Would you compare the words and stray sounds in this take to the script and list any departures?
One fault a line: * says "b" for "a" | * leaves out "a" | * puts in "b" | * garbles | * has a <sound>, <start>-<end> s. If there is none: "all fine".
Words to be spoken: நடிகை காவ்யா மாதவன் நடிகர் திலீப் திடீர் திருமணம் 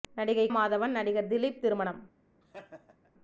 * leaves out "காவ்யா"
* leaves out "திடீர்"
* has a laugh, 2.4-3.1 s